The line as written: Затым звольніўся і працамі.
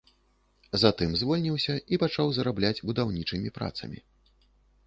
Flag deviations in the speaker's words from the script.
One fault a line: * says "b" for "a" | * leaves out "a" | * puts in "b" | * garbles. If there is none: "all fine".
* puts in "пачаў зарабляць будаўнічымі"